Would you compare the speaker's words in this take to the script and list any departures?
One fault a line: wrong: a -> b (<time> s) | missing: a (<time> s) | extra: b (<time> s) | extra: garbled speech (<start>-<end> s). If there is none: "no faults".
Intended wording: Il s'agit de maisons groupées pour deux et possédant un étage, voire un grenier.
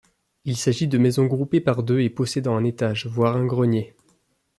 wrong: pour -> par (1.6 s)